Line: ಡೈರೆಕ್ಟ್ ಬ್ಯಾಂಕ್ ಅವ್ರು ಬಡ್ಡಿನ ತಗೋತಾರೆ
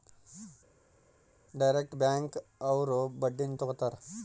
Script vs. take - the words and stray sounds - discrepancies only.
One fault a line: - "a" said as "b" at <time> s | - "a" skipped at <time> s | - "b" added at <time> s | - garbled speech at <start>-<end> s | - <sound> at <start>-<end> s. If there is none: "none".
none